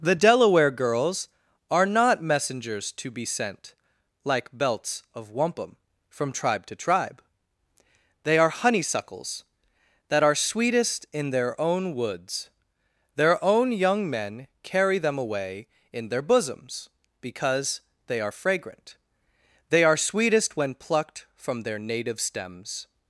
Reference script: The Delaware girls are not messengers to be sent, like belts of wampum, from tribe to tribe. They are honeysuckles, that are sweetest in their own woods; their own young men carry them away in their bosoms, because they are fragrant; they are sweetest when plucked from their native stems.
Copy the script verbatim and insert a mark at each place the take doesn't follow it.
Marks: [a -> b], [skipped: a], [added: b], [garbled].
The Delaware girls are not messengers to be sent, like belts of wampum, from tribe to tribe. They are honeysuckles, that are sweetest in their own woods; their own young men carry them away in their bosoms, because they are fragrant; they are sweetest when plucked from their native stems.